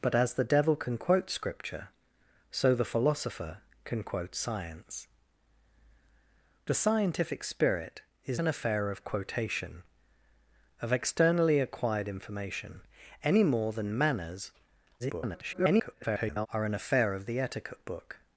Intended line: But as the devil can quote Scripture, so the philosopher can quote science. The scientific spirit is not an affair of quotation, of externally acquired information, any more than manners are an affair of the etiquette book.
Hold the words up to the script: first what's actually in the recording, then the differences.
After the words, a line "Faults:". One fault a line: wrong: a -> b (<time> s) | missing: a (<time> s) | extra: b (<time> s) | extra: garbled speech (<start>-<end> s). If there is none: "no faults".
But as the devil can quote Scripture, so the philosopher can quote science. The scientific spirit is an affair of quotation, of externally acquired information, any more than manners [garbled] are an affair of the etiquette book.
Faults:
missing: not (8.4 s)
extra: garbled speech (15.0-16.5 s)